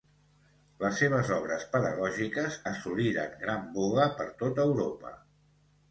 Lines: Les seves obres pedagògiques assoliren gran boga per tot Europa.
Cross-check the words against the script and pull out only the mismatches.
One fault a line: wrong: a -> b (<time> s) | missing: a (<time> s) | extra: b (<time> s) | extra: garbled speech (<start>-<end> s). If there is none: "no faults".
no faults